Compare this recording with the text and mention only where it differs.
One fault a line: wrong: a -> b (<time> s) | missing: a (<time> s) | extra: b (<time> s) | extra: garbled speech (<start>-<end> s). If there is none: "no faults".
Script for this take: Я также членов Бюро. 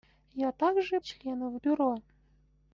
no faults